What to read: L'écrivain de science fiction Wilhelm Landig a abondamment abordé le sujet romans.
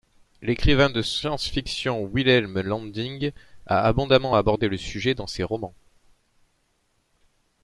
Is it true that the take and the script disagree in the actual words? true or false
true